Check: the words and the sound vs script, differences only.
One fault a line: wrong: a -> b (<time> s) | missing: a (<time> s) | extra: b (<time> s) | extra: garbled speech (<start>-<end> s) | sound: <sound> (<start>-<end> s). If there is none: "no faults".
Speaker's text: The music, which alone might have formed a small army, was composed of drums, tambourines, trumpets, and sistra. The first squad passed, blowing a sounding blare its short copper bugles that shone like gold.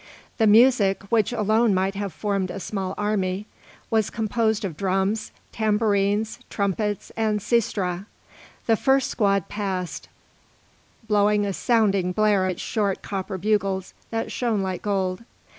no faults